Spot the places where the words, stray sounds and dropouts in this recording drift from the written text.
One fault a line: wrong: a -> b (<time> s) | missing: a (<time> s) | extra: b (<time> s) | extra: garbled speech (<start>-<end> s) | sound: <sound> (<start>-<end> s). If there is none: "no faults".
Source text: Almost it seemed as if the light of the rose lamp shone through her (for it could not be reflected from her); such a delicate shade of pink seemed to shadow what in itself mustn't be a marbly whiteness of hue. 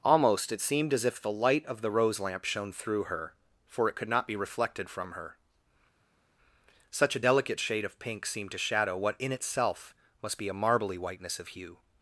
wrong: mustn't -> must (10.2 s)